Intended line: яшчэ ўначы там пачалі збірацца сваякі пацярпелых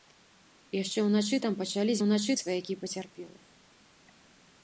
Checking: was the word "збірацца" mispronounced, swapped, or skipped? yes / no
yes